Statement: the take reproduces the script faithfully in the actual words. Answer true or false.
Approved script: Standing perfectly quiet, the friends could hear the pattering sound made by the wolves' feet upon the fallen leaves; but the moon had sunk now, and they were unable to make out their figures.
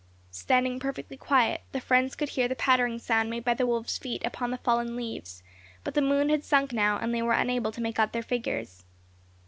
true